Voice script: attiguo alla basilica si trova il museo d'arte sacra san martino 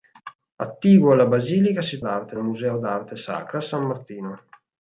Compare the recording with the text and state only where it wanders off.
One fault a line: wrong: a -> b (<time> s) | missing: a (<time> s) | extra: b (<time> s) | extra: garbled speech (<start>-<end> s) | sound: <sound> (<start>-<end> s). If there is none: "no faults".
wrong: trova -> d'arte (2.0 s)